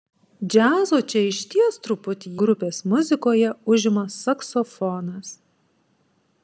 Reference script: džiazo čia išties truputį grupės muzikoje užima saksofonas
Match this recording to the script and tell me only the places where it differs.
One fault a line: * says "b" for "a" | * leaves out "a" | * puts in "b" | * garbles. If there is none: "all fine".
all fine